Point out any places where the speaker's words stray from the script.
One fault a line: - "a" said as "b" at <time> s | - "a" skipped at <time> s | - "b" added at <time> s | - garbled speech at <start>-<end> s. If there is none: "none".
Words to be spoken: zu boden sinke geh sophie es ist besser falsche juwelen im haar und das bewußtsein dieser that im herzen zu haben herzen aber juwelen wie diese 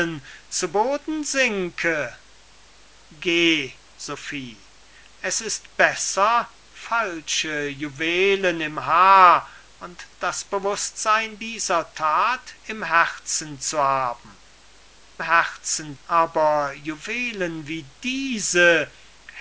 none